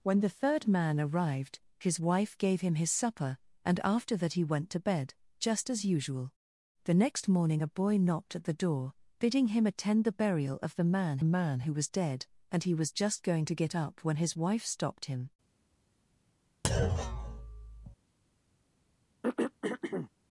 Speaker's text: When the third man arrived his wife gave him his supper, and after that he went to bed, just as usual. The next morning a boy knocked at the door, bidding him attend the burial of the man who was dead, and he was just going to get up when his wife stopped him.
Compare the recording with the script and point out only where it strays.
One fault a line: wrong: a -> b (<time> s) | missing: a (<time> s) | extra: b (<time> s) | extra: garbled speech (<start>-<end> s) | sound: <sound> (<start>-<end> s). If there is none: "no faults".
extra: man (11.2 s)
sound: thud (16.6-18.0 s)
sound: throat clearing (19.2-20.1 s)